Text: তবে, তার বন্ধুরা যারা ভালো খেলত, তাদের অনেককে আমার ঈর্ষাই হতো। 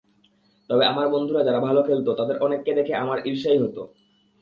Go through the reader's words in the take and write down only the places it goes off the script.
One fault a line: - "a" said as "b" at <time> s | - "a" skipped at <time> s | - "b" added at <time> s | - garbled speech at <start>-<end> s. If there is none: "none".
- "তার" said as "আমার" at 0.8 s
- "দেখে" added at 2.7 s